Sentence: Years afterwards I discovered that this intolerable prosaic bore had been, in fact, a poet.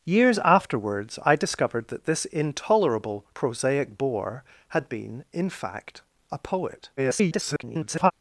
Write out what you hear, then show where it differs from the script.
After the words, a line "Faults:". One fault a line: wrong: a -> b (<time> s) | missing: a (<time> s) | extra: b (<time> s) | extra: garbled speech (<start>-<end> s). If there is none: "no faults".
Years afterwards I discovered that this intolerable prosaic bore had been, in fact, a poet. [garbled]
Faults:
extra: garbled speech (7.0-8.1 s)